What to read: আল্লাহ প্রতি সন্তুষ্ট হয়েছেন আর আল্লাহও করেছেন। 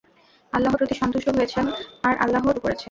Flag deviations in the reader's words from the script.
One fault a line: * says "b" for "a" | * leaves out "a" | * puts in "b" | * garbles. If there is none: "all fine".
all fine